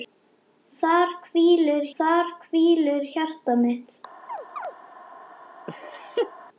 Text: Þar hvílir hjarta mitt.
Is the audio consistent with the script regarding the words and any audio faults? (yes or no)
no